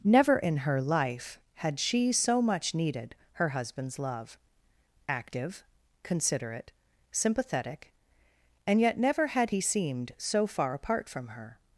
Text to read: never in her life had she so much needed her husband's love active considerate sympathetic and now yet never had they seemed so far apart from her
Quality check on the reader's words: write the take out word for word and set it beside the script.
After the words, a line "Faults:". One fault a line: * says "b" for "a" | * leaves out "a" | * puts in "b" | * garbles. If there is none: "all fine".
never in her life had she so much needed her husband's love active considerate sympathetic and yet never had he seemed so far apart from her
Faults:
* leaves out "now"
* says "he" for "they"